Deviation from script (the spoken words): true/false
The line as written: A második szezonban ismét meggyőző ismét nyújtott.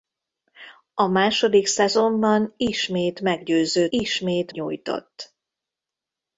false